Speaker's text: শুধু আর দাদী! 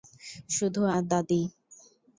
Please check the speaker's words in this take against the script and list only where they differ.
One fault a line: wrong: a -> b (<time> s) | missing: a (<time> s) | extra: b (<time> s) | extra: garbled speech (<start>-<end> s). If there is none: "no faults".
no faults